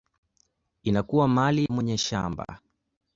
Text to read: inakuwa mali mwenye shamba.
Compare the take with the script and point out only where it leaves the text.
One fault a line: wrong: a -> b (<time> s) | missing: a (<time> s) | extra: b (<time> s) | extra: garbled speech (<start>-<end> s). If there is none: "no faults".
no faults